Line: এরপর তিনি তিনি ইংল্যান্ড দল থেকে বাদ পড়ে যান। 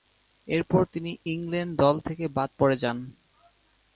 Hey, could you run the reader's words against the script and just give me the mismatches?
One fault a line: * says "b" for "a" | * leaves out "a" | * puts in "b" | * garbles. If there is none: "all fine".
* leaves out "তিনি"